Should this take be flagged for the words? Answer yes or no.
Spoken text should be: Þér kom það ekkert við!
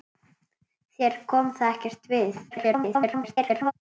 yes